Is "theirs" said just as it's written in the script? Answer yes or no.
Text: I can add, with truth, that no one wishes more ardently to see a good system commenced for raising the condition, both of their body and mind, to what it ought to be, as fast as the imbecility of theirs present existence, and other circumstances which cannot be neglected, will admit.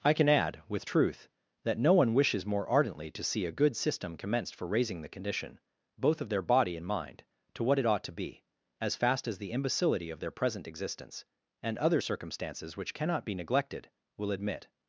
no